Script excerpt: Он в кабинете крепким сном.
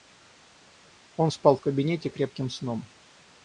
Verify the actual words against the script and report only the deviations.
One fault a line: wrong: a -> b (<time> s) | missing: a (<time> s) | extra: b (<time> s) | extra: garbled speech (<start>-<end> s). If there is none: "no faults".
extra: спал (1.3 s)